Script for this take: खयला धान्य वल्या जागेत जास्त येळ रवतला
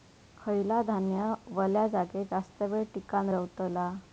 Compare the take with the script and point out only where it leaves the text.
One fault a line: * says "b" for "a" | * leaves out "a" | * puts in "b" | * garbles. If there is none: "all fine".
* puts in "टिकान"